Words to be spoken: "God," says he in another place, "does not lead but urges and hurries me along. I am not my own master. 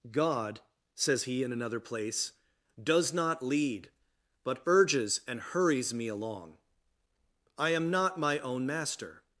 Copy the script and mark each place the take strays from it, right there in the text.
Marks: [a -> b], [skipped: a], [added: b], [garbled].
"God," says he in another place, "does not lead but urges and hurries me along. I am not my own master.